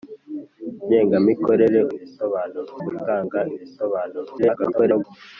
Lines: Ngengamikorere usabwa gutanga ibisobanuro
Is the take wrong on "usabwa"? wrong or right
wrong